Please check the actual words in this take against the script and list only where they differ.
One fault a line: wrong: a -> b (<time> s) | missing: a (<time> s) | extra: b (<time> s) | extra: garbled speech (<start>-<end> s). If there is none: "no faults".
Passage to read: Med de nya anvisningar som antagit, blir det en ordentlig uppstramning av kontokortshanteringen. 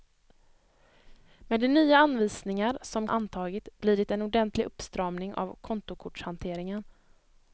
no faults